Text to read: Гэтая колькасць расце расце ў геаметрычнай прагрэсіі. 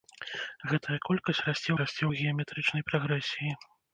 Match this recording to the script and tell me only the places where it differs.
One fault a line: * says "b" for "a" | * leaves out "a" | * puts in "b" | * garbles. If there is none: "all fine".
all fine